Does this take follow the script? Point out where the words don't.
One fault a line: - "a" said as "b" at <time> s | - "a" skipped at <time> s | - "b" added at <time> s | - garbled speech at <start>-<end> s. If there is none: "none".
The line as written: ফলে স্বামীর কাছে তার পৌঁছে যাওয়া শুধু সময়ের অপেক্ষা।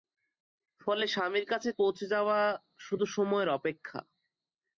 - "তার" skipped at 1.7 s